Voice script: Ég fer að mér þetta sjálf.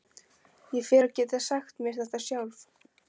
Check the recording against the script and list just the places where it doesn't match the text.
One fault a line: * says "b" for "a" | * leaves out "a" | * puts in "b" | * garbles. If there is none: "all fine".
* puts in "geta sagt"